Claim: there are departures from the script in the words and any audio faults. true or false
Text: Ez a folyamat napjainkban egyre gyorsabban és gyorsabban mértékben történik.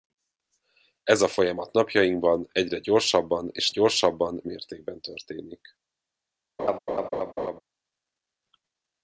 true